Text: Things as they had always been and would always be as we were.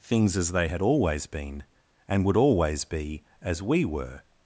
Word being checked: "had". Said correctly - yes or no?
yes